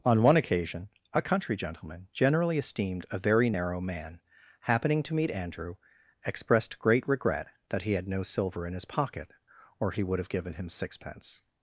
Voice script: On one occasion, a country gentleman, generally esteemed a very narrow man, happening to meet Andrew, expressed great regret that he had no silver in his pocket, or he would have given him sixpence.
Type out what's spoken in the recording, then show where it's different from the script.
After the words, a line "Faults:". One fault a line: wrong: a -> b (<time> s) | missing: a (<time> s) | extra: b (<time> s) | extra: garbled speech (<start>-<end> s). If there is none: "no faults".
On one occasion, a country gentleman, generally esteemed a very narrow man, happening to meet Andrew, expressed great regret that he had no silver in his pocket, or he would have given him sixpence.
Faults:
no faults